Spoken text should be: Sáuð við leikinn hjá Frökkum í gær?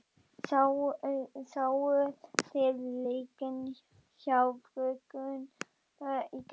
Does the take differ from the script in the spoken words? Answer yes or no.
yes